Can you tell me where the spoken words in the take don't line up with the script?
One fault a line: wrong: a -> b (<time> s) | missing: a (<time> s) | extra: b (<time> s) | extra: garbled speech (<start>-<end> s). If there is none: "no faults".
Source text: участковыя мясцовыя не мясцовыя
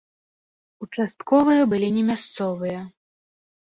wrong: мясцовыя -> былі (1.7 s)